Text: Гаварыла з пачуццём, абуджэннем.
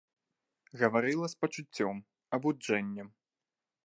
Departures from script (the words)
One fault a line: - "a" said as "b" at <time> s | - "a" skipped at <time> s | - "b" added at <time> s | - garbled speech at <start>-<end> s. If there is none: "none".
none